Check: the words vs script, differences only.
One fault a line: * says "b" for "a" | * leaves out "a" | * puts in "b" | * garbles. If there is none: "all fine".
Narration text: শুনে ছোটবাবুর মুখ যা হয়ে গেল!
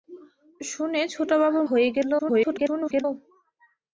* leaves out "মুখ যা"
* garbles